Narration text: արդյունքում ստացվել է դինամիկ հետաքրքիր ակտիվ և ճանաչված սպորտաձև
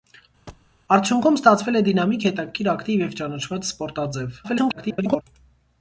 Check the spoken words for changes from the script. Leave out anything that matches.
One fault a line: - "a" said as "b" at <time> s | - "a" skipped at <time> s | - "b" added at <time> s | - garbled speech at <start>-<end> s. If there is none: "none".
- garbled speech at 4.4-5.2 s